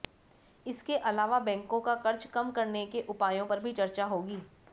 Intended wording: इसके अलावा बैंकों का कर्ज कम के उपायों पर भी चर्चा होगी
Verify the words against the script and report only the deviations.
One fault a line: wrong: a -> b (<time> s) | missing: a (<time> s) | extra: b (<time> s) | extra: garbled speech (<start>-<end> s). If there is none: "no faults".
extra: करने (2.5 s)